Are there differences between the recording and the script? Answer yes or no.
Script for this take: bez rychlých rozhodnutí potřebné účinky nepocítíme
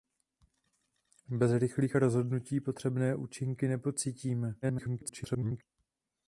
yes